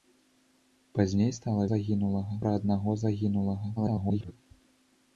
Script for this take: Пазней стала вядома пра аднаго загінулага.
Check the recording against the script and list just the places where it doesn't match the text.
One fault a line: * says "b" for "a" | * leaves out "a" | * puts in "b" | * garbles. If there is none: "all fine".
* says "загінулага" for "вядома"
* garbles